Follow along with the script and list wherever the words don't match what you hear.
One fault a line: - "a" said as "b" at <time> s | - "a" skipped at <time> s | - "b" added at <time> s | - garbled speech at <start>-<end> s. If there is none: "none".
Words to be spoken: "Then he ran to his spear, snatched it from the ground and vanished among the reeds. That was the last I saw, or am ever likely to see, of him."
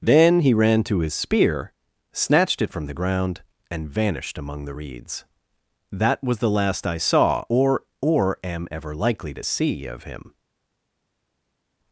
- "or" added at 8.0 s